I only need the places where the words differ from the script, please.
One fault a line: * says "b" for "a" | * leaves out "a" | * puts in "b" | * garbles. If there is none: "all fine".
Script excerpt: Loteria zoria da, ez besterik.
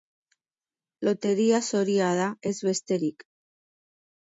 all fine